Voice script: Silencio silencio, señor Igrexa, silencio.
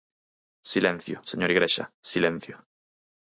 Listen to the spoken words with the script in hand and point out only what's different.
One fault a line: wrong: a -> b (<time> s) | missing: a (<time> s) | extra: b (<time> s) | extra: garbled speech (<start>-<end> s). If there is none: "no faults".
missing: silencio (1.2 s)